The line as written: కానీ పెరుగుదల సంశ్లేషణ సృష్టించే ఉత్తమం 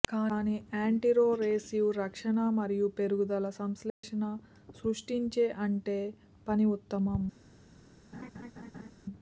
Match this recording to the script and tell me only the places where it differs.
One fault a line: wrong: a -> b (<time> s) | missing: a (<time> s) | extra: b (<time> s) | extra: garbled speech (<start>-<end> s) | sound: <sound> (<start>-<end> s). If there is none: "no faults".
extra: యాంటీరొరెసివ్ రక్షణ మరియు (0.7 s)
sound: dropout (3.9-4.0 s)
extra: అంటే పని (5.7 s)
sound: laugh (8.1-8.9 s)